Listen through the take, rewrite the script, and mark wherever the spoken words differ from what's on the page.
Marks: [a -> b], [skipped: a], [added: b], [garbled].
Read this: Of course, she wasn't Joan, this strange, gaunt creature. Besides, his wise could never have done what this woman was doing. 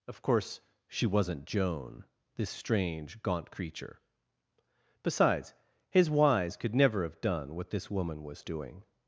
Of course, she wasn't Joan, this strange, gaunt creature. Besides, his wise could never have done what this woman was doing.